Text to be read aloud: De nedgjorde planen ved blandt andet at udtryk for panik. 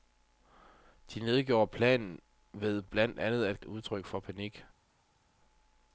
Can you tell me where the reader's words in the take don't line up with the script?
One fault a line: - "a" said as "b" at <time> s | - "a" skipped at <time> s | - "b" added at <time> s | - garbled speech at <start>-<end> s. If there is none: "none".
none